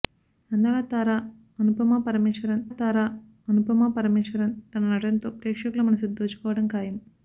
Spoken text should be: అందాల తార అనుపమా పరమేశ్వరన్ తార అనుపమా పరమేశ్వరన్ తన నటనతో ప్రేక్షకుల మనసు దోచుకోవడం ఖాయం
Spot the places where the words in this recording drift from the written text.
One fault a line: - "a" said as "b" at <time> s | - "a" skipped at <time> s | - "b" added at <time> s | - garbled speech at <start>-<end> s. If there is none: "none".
none